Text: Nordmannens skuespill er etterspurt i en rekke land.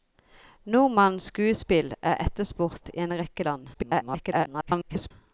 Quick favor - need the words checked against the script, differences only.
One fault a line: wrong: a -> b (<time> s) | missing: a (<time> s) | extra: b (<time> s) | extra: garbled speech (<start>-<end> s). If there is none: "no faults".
extra: garbled speech (3.7-5.1 s)